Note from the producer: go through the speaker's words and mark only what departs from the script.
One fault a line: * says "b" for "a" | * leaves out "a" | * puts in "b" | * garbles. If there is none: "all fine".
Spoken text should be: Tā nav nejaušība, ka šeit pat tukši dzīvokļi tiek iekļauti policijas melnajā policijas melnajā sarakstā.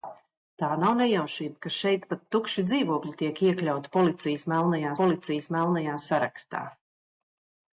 all fine